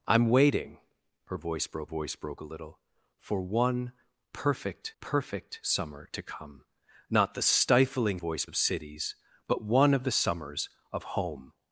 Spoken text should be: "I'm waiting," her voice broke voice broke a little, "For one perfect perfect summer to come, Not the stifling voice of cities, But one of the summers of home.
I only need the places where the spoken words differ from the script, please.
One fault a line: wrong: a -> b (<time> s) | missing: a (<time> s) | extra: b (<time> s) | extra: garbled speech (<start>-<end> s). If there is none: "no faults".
no faults